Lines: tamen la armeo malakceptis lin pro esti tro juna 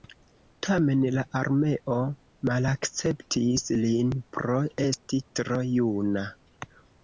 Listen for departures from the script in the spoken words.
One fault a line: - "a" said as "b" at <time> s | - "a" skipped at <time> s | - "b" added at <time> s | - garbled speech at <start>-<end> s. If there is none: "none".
none